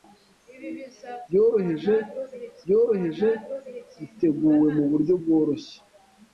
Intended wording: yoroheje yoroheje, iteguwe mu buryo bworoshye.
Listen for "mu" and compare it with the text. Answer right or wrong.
right